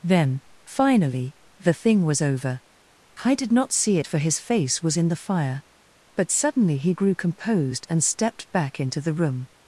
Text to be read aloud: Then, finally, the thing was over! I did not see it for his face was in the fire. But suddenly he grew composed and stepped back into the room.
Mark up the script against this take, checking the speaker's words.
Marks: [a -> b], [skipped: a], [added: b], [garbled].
Then, finally, the thing was over! I did not see it for his face was in the fire. But suddenly he grew composed and stepped back into the room.